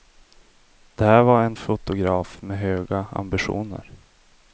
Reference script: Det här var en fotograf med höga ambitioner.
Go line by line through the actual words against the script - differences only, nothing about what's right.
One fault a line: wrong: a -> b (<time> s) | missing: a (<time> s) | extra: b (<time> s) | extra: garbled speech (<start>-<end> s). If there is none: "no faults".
no faults